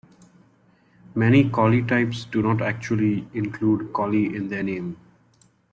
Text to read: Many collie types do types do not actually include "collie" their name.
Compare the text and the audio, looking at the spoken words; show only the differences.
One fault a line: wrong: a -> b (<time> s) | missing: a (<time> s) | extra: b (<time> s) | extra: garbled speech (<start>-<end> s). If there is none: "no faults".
missing: types do (2.4 s)
extra: in (4.4 s)